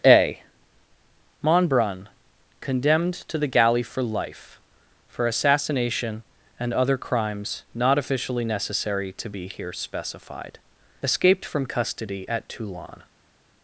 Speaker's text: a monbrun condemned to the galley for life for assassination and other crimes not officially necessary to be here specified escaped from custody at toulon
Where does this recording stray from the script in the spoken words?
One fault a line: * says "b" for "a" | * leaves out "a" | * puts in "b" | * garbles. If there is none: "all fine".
all fine